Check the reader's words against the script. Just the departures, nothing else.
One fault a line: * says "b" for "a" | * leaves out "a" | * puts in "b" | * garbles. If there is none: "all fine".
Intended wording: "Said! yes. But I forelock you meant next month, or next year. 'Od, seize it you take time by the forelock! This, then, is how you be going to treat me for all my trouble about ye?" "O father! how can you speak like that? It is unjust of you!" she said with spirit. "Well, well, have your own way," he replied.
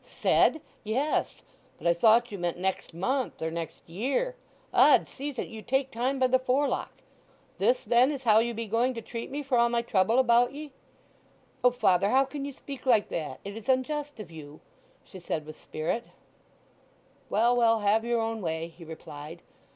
* says "thought" for "forelock"